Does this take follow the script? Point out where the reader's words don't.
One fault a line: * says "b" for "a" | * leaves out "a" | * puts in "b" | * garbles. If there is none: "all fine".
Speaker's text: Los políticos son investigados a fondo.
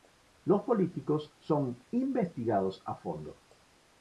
all fine